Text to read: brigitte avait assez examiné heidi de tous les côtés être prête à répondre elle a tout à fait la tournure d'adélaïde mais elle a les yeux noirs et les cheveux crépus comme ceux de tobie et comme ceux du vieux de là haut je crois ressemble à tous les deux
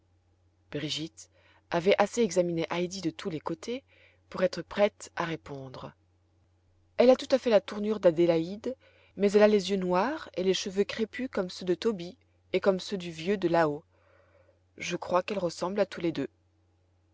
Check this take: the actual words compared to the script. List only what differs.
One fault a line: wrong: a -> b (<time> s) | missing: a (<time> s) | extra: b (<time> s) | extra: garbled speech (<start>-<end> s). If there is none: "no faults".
extra: pour (4.3 s)
extra: qu'elle (15.2 s)